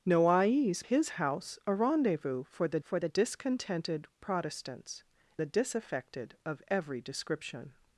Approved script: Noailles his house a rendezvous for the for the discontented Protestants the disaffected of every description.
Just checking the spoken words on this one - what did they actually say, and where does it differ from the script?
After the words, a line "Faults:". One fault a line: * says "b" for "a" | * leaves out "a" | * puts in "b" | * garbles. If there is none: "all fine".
Noailles his house a rendezvous for the for the discontented Protestants the disaffected of every description.
Faults:
all fine